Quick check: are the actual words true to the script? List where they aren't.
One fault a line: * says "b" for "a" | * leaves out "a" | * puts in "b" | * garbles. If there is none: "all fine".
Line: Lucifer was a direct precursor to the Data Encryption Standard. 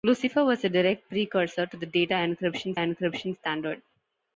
* puts in "Encryption"